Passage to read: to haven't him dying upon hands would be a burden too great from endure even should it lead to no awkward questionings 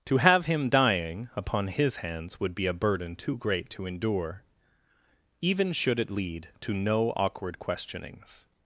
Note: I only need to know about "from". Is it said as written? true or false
false